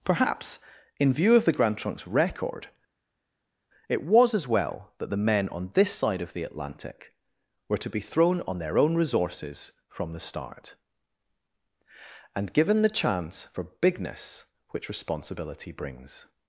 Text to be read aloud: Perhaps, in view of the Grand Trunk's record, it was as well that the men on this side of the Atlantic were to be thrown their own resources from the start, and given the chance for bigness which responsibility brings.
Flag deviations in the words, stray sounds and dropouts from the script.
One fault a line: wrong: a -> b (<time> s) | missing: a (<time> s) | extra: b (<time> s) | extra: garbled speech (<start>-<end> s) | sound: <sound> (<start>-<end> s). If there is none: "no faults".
extra: on (8.4 s)